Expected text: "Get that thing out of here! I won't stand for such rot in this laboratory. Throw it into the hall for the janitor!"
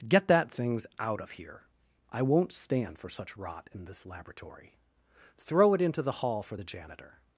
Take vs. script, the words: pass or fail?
fail